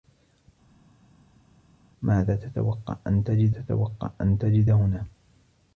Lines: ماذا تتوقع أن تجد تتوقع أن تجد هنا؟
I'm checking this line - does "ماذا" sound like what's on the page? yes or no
yes